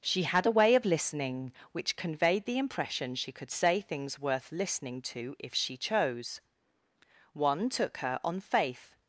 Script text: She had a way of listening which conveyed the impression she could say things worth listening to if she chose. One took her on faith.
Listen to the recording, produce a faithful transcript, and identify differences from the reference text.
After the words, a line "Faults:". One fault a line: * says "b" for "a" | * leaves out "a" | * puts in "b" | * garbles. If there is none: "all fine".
She had a way of listening which conveyed the impression she could say things worth listening to if she chose. One took her on faith.
Faults:
all fine